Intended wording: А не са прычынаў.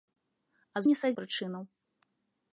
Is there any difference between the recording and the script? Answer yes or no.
no